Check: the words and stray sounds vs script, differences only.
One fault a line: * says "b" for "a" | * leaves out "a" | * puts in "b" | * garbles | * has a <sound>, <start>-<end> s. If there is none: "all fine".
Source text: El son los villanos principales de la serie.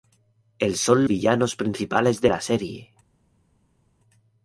* leaves out "los"